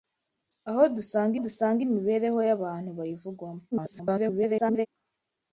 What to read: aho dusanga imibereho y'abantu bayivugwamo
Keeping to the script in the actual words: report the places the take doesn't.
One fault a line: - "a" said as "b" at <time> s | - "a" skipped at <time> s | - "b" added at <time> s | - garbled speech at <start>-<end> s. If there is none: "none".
- "dusanga" added at 1.4 s
- garbled speech at 3.7-4.9 s